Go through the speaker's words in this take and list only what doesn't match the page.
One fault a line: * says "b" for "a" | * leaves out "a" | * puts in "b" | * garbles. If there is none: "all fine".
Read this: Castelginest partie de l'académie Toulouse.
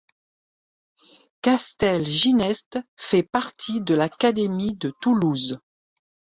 * puts in "fait"
* puts in "de"